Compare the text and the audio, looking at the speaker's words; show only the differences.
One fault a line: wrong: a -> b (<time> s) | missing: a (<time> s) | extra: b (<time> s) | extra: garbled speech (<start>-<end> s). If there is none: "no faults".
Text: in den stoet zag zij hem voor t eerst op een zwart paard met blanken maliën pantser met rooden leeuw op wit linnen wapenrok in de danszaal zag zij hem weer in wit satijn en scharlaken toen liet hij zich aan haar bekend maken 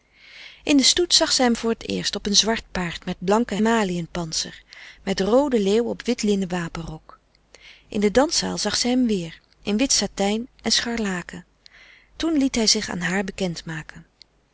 no faults